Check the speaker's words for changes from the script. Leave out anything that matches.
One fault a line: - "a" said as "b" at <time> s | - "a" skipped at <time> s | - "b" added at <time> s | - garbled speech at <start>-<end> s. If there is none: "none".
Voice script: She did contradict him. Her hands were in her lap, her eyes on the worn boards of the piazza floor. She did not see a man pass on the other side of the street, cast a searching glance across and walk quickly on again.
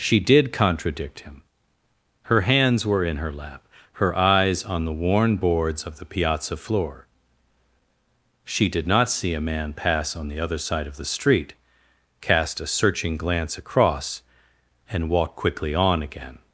none